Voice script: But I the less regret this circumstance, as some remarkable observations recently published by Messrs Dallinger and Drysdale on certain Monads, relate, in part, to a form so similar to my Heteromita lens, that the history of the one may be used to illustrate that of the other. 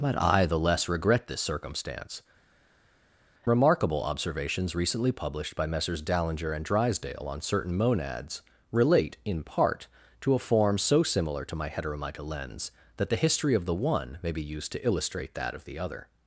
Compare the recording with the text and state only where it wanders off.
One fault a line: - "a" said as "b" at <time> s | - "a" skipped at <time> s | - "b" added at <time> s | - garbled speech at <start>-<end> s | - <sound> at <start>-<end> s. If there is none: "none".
- "as some" skipped at 2.2 s